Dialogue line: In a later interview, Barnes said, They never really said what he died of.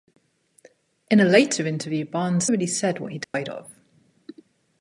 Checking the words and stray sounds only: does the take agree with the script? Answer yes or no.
no